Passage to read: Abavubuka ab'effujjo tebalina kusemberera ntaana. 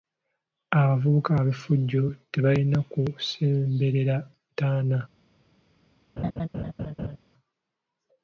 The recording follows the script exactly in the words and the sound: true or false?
false